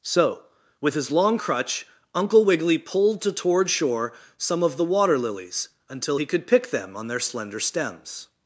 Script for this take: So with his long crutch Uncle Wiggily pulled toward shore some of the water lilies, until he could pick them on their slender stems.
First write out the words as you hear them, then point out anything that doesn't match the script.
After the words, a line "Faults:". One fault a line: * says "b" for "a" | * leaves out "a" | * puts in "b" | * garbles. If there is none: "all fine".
So with his long crutch Uncle Wiggily pulled to toward shore some of the water lilies, until he could pick them on their slender stems.
Faults:
* puts in "to"